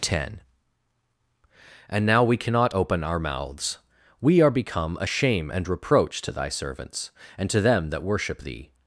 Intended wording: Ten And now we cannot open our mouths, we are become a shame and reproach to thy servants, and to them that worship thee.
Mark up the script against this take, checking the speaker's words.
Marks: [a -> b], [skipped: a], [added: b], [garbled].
Ten And now we cannot open our mouths, we are become a shame and reproach to thy servants, and to them that worship thee.